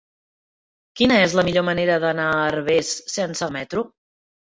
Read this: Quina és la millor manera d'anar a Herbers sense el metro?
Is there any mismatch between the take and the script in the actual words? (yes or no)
no